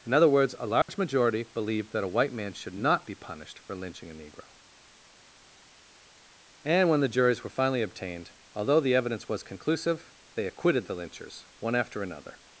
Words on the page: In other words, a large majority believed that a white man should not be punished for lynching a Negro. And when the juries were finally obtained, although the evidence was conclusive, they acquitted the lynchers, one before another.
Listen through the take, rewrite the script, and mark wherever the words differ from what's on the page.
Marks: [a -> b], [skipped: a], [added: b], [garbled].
In other words, a large majority believed that a white man should not be punished for lynching a Negro. And when the juries were finally obtained, although the evidence was conclusive, they acquitted the lynchers, one [before -> after] another.